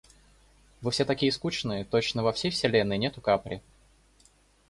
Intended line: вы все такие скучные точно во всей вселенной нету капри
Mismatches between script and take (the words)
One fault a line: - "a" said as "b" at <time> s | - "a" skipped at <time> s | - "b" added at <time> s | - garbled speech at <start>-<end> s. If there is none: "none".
none